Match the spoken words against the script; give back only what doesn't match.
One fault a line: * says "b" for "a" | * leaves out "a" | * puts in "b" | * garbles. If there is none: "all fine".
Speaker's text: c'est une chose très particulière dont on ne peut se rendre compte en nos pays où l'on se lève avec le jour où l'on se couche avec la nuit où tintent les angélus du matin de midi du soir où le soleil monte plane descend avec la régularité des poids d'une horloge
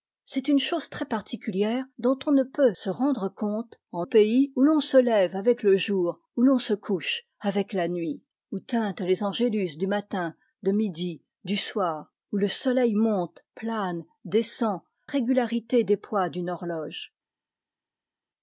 * leaves out "nos"
* leaves out "avec la"